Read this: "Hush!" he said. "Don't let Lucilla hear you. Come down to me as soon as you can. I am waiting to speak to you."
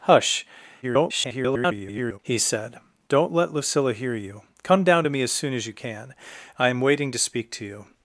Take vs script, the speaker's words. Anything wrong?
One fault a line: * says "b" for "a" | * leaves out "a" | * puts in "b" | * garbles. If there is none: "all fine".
* garbles